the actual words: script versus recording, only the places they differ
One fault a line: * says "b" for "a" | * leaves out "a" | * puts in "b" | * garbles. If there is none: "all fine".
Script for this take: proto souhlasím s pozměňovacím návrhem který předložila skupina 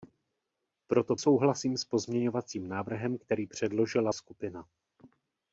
all fine